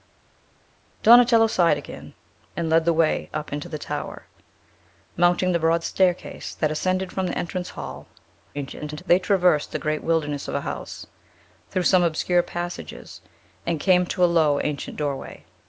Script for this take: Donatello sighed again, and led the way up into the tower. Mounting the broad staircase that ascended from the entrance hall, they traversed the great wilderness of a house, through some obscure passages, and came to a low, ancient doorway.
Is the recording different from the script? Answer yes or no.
yes